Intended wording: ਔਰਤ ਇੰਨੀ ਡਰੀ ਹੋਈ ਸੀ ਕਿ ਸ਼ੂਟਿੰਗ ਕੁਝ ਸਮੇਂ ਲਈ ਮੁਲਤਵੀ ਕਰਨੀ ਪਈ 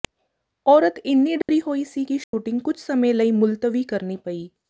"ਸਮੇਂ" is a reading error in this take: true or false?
false